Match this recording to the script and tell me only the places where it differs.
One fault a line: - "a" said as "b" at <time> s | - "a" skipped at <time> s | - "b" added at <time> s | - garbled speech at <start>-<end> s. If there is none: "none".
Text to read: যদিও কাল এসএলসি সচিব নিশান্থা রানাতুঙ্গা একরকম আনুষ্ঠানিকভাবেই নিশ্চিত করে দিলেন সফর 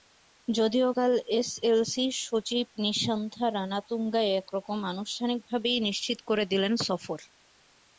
none